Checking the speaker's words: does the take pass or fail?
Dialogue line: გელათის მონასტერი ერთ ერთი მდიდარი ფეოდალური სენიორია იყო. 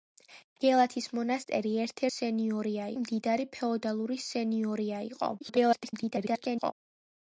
fail